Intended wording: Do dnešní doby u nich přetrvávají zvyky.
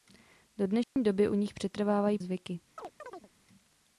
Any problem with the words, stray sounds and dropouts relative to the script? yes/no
yes